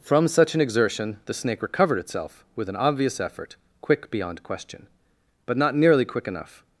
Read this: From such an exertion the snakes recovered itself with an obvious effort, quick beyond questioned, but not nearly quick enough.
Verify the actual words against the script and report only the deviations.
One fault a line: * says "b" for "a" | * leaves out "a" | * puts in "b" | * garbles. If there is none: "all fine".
* says "snake" for "snakes"
* says "question" for "questioned"